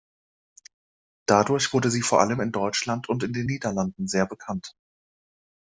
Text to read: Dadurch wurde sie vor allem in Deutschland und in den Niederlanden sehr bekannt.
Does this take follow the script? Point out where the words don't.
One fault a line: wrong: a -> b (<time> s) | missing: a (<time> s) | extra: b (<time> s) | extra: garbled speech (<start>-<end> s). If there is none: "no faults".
no faults